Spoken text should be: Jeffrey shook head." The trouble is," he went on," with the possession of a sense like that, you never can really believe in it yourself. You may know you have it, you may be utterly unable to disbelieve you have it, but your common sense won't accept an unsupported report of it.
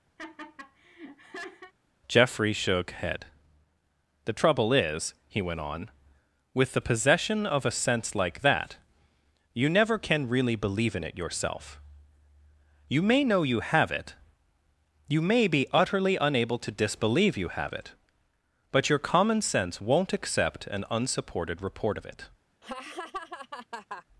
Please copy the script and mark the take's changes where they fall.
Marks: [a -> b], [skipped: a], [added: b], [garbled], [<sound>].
[laugh] Jeffrey shook head." The trouble is," he went on," with the possession of a sense like that, you never can really believe in it yourself. You may know you have it, you may be utterly unable to disbelieve you have it, but your common sense won't accept an unsupported report of it. [laugh]